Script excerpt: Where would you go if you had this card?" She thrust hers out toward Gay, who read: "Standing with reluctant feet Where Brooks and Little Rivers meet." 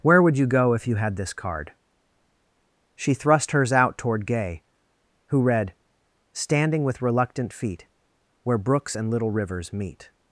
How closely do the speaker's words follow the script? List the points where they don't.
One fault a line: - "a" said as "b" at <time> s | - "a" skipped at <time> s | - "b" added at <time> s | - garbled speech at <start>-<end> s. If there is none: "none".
none